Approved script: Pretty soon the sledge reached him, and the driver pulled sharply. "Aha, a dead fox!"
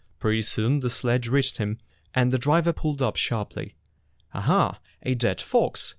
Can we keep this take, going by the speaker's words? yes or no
no